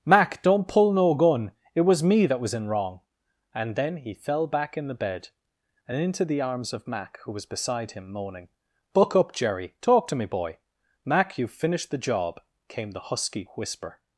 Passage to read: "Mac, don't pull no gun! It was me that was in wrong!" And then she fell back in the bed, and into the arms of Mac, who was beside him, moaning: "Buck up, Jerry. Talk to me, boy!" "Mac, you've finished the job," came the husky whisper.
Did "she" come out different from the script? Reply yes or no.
yes